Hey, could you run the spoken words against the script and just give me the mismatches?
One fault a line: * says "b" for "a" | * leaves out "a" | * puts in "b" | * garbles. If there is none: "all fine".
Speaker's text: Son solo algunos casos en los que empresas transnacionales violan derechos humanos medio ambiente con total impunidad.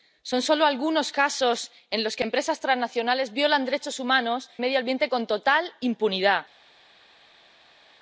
all fine